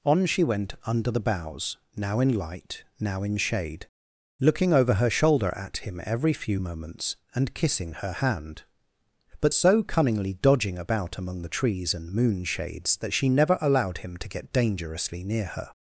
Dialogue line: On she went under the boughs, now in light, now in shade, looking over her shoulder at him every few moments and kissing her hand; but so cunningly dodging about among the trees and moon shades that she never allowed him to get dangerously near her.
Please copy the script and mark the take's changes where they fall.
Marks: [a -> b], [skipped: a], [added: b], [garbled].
On she went under the boughs, now in light, now in shade, looking over her shoulder at him every few moments and kissing her hand; but so cunningly dodging about among the trees and moon shades that she never allowed him to get dangerously near her.